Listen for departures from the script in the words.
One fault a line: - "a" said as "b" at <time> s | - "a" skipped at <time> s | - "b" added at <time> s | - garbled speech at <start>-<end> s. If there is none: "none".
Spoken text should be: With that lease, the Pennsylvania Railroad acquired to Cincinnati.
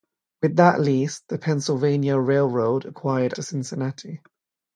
none